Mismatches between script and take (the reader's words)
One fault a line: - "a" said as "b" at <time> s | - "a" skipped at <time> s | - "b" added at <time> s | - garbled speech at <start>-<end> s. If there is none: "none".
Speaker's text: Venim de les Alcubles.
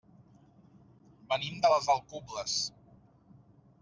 none